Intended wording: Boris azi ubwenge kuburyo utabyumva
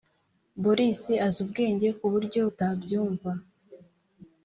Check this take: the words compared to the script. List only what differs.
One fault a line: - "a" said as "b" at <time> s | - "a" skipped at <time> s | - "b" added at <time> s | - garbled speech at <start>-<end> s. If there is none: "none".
none